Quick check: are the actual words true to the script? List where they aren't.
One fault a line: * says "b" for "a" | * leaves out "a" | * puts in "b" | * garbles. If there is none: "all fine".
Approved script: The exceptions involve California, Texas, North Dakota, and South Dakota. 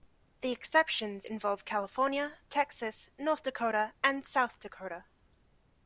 all fine